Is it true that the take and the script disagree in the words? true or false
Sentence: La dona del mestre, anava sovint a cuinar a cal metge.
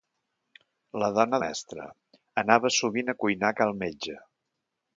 true